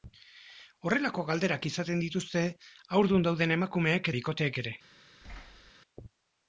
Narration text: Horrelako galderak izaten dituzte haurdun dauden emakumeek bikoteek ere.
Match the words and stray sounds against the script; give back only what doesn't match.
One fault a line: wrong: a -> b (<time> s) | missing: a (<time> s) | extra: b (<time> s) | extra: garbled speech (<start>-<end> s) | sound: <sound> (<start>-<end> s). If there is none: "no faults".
sound: thud (5.2-5.7 s)